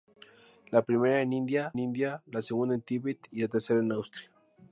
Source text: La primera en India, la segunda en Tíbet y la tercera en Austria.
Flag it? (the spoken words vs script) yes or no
yes